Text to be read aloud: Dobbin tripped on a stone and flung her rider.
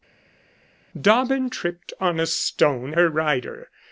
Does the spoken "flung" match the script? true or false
false